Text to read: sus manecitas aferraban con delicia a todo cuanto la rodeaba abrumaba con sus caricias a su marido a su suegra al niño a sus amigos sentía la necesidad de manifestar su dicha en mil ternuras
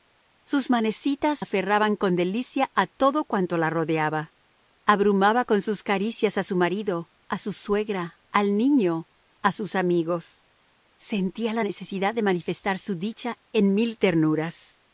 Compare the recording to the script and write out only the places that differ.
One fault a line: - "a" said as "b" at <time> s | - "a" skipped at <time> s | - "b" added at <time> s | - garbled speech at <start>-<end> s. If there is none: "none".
none